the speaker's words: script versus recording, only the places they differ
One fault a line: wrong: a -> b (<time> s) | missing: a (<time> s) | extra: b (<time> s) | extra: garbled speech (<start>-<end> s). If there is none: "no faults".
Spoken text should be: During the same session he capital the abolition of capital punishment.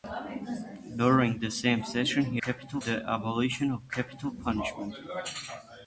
no faults